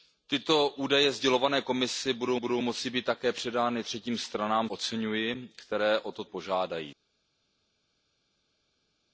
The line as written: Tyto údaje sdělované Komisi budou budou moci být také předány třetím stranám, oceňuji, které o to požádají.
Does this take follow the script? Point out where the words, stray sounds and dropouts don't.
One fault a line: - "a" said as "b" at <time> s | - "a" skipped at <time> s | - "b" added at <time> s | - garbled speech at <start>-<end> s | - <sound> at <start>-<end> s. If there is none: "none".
none